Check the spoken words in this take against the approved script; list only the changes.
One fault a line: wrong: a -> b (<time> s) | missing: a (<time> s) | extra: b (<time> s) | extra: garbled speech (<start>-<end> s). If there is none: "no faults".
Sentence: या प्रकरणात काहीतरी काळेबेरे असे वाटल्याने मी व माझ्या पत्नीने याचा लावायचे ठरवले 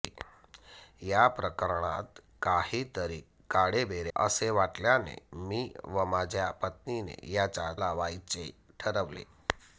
no faults